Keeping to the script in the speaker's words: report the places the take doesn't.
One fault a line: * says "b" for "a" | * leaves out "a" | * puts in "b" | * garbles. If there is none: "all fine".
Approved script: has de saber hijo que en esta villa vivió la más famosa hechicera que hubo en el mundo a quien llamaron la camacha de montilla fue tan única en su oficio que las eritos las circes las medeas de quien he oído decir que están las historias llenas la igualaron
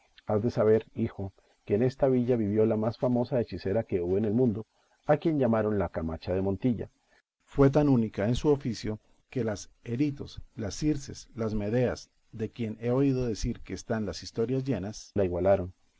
all fine